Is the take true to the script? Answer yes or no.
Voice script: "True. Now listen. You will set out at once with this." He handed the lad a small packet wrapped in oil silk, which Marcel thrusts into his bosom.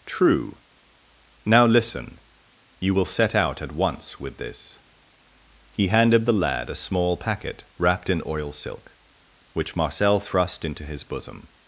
no